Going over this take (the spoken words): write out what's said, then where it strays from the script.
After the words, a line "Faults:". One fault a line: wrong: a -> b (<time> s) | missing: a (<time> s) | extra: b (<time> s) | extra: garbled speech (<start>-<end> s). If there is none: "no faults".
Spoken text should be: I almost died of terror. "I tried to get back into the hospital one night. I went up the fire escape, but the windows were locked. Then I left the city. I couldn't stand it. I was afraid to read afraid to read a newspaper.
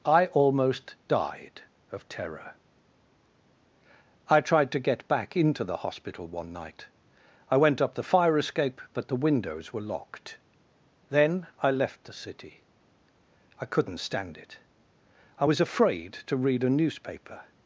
I almost died of terror. "I tried to get back into the hospital one night. I went up the fire escape, but the windows were locked. Then I left the city. I couldn't stand it. I was afraid to read a newspaper.
Faults:
missing: afraid to read (16.6 s)